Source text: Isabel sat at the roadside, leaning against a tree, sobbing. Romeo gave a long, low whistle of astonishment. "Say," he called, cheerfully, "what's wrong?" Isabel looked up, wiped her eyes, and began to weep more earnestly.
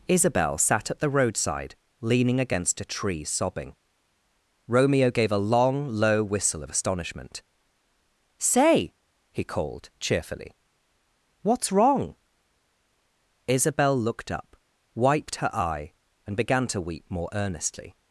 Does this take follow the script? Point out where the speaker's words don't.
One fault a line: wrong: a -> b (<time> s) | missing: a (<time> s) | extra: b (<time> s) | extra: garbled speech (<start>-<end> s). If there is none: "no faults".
wrong: eyes -> eye (15.5 s)